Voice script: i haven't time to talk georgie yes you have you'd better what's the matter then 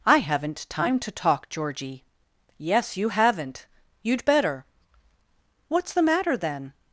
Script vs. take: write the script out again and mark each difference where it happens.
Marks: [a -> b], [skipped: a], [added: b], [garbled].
i haven't time to talk georgie yes you [have -> haven't] you'd better what's the matter then